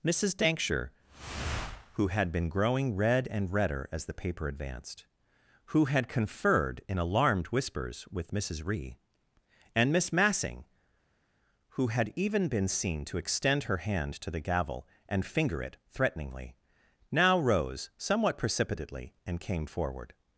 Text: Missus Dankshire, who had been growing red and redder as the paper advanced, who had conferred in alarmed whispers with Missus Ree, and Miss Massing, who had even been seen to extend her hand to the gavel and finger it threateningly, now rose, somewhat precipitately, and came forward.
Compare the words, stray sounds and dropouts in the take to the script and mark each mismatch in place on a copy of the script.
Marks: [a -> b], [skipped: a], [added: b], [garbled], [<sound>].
Missus Dankshire, who had been growing red and redder as the paper advanced, who had conferred in alarmed whispers with Missus Ree, and Miss Massing, who had even been seen to extend her hand to the gavel and finger it threateningly, now rose, somewhat precipitately, and came forward.